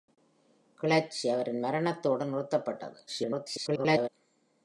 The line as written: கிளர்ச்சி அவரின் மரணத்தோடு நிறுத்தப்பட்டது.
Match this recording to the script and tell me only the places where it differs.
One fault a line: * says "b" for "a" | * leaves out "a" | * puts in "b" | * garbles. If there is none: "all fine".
* garbles